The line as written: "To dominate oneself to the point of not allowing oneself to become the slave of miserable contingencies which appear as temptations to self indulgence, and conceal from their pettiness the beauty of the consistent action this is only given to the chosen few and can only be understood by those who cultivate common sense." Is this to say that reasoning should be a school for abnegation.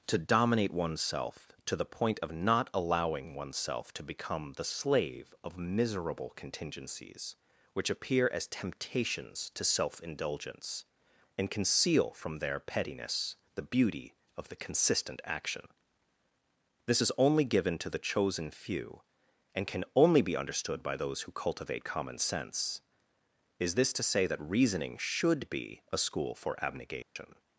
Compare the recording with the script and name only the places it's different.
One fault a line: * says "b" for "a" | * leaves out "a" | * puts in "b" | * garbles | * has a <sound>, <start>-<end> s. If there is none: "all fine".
* has a dropout, 27.0-27.2 s